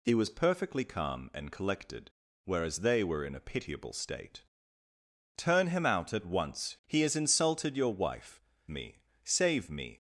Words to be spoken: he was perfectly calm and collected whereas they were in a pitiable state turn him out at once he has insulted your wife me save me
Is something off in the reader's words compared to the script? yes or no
no